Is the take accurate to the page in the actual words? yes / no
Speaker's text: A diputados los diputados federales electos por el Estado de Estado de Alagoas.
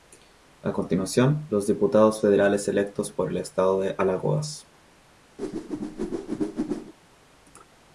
no